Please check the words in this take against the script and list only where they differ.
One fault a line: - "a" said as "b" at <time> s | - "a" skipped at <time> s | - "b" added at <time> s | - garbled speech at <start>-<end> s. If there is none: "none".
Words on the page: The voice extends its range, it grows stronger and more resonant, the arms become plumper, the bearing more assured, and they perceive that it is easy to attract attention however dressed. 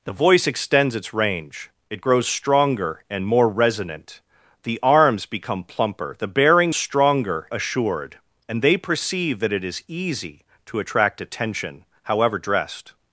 - "more" said as "stronger" at 6.7 s